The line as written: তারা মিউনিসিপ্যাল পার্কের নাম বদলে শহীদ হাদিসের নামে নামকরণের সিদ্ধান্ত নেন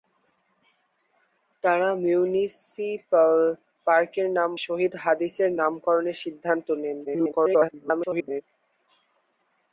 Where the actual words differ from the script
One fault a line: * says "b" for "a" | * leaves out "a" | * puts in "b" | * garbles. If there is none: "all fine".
* leaves out "বদলে"
* leaves out "নামে"
* garbles